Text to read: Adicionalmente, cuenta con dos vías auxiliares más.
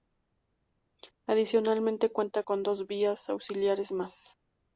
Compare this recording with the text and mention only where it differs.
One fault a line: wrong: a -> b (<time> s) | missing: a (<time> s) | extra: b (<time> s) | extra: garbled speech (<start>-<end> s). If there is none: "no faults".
no faults